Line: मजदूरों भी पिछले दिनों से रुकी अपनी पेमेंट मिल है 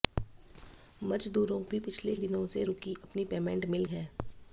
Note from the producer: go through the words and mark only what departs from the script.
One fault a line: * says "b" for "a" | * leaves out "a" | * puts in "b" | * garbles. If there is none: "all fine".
all fine